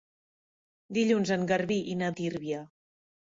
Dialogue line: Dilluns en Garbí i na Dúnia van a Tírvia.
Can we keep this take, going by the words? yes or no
no